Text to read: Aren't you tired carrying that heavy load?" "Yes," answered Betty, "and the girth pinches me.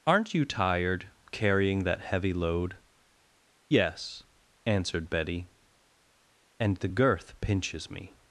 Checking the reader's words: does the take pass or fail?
pass